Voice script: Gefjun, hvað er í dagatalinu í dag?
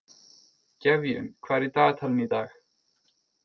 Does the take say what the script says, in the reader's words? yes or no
yes